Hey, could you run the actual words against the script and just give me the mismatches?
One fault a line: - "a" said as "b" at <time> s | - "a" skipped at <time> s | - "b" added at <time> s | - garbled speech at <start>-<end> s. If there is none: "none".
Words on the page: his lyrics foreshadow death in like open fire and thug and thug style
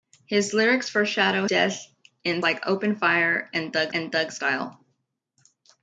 none